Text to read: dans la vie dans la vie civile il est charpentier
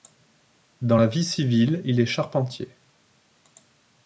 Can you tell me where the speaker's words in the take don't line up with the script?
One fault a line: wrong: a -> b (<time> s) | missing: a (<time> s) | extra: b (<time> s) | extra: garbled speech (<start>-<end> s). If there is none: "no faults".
missing: dans la vie (1.2 s)